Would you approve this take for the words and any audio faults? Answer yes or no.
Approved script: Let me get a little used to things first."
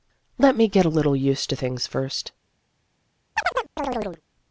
no